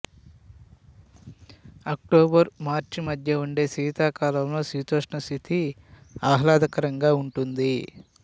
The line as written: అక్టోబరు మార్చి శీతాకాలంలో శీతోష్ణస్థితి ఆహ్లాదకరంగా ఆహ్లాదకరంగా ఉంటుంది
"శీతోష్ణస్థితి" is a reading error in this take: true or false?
false